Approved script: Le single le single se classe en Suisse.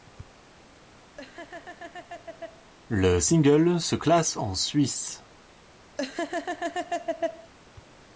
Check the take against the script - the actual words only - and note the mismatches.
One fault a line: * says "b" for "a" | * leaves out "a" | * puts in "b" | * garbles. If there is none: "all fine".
* leaves out "le single"